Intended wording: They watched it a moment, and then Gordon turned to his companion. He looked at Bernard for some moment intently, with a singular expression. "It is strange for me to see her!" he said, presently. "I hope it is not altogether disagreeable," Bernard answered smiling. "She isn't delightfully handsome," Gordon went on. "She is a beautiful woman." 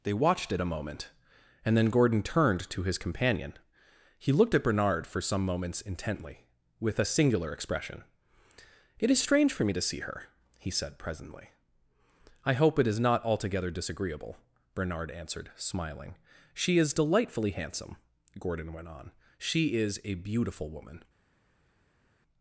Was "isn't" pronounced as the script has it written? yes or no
no